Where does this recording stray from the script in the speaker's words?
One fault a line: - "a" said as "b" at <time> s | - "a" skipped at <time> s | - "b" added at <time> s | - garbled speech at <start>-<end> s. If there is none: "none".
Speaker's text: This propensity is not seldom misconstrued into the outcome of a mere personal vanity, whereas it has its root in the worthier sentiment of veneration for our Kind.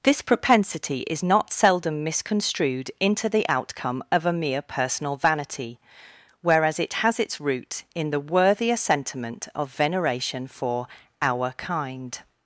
none